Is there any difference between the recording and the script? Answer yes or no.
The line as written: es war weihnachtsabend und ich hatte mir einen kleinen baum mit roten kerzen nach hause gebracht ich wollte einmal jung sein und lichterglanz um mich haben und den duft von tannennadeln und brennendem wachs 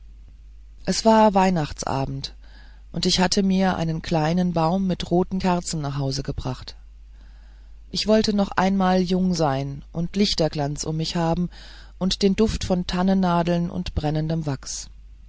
yes